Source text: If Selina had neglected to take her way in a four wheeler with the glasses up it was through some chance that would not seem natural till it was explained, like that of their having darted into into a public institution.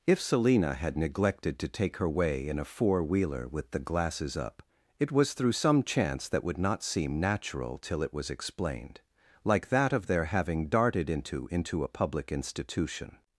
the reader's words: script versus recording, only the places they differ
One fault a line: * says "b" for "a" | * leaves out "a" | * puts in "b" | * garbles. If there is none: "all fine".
all fine